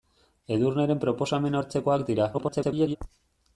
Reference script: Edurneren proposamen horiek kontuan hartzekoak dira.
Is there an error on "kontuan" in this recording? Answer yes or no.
yes